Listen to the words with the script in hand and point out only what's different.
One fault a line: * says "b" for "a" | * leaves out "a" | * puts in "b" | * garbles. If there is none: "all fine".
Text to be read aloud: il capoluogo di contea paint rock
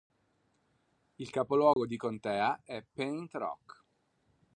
* puts in "è"